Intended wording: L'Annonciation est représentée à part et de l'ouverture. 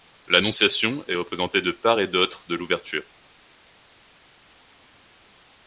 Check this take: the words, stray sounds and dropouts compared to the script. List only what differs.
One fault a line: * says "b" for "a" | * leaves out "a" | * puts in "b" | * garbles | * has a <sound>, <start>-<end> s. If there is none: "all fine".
* says "de" for "à"
* puts in "d'autre"